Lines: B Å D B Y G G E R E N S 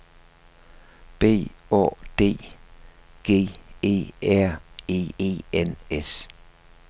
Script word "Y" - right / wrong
wrong